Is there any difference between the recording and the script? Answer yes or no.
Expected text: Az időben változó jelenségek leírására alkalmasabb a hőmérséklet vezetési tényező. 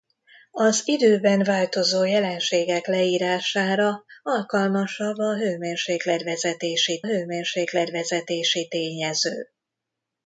yes